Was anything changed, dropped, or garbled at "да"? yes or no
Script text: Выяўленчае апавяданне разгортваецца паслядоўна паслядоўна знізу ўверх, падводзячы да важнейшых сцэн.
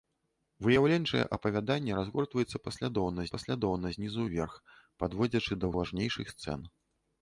no